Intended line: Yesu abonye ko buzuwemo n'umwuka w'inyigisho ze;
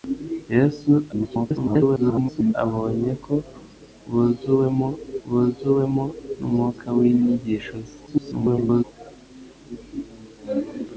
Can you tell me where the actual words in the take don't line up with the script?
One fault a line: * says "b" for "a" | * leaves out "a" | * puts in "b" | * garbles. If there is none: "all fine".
* garbles
* puts in "buzuwemo"
* garbles